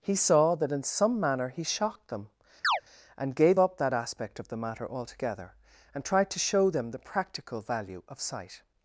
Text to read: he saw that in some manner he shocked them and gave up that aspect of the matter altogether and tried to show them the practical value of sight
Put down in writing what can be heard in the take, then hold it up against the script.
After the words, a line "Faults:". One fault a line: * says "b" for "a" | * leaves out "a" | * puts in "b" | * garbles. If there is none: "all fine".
he saw that in some manner he shocked them and gave up that aspect of the matter altogether and tried to show them the practical value of sight
Faults:
all fine